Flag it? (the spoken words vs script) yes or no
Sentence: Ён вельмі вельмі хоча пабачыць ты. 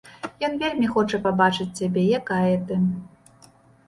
yes